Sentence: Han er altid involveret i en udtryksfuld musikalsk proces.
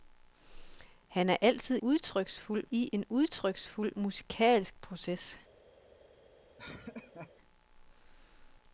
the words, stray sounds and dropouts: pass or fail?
fail